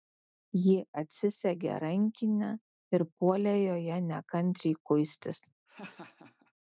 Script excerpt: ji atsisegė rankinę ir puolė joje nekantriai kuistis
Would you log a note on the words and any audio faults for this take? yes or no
yes